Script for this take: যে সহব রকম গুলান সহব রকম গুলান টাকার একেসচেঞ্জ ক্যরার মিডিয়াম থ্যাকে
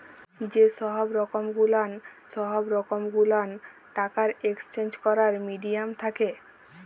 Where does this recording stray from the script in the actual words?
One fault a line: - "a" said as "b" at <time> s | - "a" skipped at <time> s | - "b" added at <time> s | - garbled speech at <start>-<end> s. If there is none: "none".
none